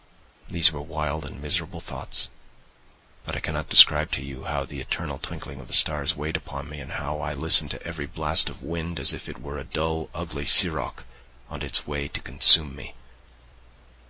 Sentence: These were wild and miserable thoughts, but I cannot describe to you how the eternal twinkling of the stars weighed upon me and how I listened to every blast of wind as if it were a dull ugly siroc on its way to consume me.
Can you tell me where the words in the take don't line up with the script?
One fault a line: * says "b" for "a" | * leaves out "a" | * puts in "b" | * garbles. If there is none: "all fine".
all fine